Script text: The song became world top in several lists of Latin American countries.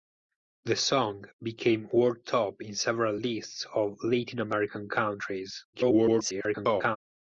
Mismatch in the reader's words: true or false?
true